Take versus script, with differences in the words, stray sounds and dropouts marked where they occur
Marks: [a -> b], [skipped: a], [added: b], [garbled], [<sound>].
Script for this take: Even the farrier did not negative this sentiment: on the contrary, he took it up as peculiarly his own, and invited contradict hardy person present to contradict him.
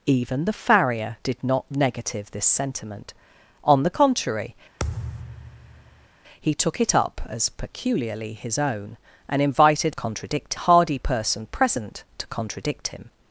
Even the farrier did not negative this sentiment: on the contrary, [thud] he took it up as peculiarly his own, and invited contradict hardy person present to contradict him.